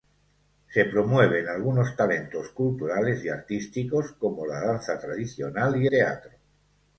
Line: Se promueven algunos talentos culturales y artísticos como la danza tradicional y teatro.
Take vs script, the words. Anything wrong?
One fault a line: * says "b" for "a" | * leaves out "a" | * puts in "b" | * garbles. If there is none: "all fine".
all fine